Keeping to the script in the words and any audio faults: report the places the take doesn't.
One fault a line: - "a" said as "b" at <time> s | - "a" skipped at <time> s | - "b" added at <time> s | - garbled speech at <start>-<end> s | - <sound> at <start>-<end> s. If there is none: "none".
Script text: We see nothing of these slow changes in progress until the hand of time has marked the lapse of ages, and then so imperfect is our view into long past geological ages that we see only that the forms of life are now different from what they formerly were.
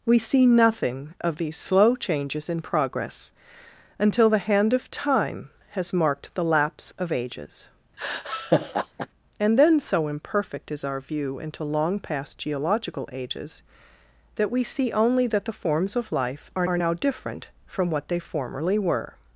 - laugh at 8.0-9.1 s
- "are" added at 16.7 s